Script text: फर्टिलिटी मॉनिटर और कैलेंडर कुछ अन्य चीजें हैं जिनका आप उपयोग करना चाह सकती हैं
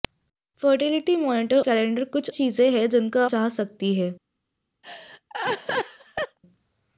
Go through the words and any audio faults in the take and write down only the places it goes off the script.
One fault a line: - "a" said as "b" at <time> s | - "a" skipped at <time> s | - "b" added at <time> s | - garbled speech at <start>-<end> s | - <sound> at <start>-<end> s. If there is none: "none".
- "और" skipped at 1.6 s
- "अन्य" skipped at 2.3 s
- "आप उपयोग करना" skipped at 3.2 s
- laugh at 4.8-6.4 s